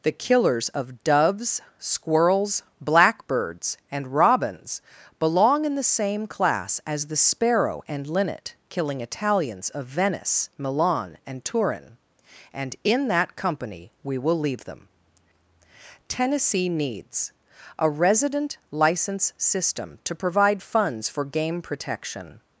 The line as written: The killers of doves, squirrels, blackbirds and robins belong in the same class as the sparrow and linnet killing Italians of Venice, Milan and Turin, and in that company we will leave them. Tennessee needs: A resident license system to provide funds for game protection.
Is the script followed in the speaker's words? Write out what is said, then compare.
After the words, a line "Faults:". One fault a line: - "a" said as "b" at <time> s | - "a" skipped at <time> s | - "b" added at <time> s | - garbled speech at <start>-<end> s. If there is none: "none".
The killers of doves, squirrels, blackbirds and robins belong in the same class as the sparrow and linnet killing Italians of Venice, Milan and Turin, and in that company we will leave them. Tennessee needs: A resident license system to provide funds for game protection.
Faults:
none